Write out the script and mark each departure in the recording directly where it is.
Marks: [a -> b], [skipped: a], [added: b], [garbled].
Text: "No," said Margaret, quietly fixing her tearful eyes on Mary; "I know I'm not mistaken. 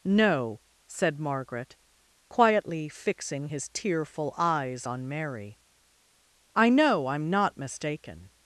"No," said Margaret, quietly fixing [her -> his] tearful eyes on Mary; "I know I'm not mistaken.